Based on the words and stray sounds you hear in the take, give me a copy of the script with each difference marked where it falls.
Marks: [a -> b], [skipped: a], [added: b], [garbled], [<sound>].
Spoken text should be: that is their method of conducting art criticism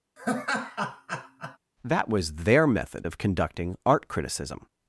[laugh] that [is -> was] their method of conducting art criticism